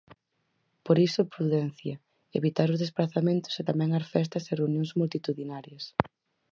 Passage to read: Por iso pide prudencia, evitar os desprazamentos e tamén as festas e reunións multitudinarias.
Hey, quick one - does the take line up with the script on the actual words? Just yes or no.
no